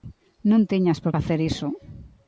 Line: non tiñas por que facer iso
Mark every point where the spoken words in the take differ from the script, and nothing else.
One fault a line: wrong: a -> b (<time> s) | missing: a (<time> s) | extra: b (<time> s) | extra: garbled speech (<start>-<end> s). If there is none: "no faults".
missing: que (1.1 s)